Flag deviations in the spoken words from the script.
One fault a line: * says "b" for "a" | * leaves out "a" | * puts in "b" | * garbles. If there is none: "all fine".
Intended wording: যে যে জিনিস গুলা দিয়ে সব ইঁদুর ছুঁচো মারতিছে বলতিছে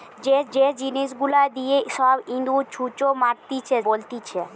all fine